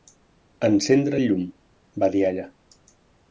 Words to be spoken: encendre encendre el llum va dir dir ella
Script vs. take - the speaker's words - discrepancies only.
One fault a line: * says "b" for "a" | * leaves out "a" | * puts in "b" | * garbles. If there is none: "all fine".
* leaves out "encendre"
* leaves out "dir"